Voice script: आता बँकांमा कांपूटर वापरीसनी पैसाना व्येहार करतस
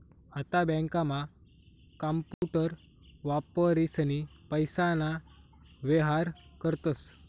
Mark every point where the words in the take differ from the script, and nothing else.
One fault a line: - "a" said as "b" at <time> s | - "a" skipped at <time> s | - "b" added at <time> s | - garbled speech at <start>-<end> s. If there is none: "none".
none